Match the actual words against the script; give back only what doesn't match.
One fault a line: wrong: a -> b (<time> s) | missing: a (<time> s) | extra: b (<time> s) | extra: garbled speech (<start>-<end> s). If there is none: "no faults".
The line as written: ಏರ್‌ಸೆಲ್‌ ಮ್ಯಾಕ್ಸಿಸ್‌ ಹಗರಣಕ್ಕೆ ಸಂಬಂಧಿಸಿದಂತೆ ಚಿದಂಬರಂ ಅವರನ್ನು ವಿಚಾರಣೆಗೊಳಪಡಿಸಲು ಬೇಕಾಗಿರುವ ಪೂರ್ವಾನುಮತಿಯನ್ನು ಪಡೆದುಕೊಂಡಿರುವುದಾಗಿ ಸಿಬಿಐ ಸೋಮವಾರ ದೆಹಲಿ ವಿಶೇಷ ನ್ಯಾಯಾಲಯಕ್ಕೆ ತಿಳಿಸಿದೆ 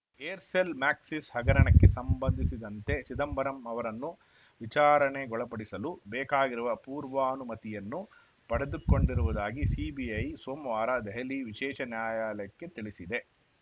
no faults